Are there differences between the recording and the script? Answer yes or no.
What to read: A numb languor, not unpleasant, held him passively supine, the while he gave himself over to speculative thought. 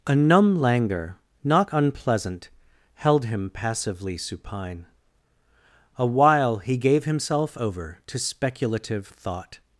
yes